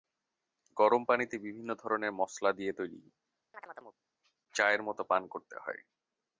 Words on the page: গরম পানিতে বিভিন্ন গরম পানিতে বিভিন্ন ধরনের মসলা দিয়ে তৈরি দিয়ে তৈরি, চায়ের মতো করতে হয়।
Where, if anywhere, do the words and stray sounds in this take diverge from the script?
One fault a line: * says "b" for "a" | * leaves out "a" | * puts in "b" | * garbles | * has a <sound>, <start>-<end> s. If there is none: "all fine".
* leaves out "গরম পানিতে বিভিন্ন"
* leaves out "দিয়ে তৈরি"
* has a chirp, 3.5-4.0 s
* puts in "পান"